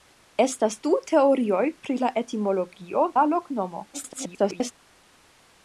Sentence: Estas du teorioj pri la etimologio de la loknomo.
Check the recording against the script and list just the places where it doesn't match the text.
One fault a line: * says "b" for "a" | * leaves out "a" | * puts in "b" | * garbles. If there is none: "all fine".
* leaves out "de"
* garbles